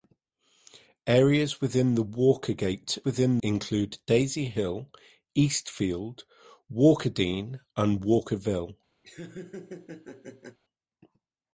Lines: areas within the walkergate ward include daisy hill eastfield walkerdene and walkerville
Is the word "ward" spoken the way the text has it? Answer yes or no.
no